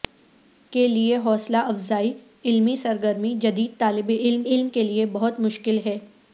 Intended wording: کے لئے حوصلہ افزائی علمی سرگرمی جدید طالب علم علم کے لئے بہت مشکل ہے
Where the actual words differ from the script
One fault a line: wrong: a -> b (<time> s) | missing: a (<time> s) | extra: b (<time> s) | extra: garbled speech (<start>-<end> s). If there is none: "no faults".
no faults